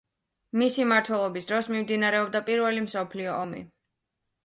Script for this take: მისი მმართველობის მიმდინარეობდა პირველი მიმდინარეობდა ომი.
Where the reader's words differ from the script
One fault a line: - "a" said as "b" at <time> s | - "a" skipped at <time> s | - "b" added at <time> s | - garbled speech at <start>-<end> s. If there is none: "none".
- "დროს" added at 1.5 s
- "მიმდინარეობდა" said as "მსოფლიო" at 2.9 s